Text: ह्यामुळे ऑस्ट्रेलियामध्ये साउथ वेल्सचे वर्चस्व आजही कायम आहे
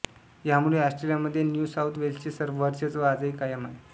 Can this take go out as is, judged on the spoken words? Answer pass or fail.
fail